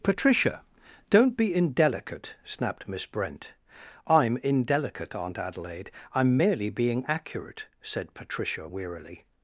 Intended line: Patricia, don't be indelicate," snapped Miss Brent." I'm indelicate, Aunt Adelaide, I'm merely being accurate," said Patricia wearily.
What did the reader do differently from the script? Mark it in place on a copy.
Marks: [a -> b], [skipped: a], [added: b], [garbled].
Patricia, don't be indelicate," snapped Miss Brent." I'm indelicate, Aunt Adelaide, I'm merely being accurate," said Patricia wearily.